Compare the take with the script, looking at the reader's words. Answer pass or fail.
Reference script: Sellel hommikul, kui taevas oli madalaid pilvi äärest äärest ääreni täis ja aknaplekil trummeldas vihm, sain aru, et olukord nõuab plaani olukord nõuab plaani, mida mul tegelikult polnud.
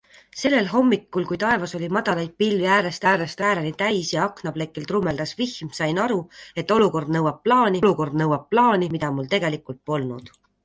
pass